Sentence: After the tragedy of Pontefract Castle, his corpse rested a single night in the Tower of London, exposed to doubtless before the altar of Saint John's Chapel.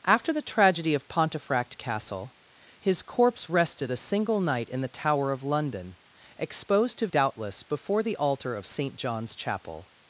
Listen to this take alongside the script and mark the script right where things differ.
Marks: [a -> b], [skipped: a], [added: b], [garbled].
After the tragedy of Pontefract Castle, his corpse rested a single night in the Tower of London, exposed to doubtless before the altar of Saint John's Chapel.